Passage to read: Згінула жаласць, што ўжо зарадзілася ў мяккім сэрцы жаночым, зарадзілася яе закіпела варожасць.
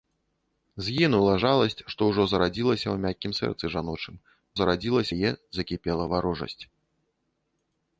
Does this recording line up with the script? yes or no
yes